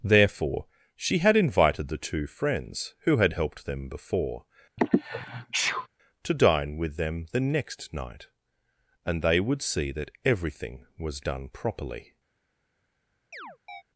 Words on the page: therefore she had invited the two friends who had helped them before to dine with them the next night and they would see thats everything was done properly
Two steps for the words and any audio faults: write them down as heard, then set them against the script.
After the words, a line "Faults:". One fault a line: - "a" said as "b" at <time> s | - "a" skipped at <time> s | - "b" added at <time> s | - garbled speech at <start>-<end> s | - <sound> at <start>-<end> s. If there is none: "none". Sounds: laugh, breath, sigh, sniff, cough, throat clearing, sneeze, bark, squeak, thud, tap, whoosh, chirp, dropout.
therefore she had invited the two friends who had helped them before to dine with them the next night and they would see that everything was done properly
Faults:
- sneeze at 4.8-5.9 s
- "thats" said as "that" at 9.9 s
- chirp at 13.3-13.8 s